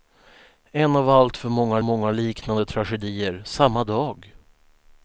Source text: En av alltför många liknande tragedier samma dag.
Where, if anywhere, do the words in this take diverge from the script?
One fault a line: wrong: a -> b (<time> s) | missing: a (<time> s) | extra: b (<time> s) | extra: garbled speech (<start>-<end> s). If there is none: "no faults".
extra: många (1.8 s)